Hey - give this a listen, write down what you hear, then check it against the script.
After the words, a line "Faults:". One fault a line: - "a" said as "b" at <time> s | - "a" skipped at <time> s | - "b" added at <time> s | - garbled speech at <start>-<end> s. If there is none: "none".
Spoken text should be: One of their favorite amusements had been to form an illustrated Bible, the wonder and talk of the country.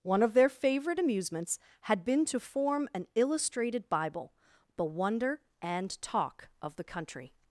One of their favorite amusements had been to form an illustrated Bible, the wonder and talk of the country.
Faults:
none